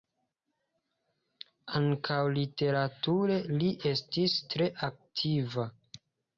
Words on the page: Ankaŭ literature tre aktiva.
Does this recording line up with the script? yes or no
no